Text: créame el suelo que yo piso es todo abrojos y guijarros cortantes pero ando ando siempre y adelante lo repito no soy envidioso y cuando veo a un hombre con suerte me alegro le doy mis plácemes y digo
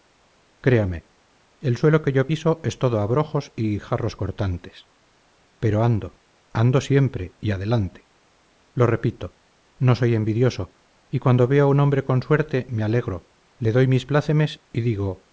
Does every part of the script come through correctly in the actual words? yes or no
yes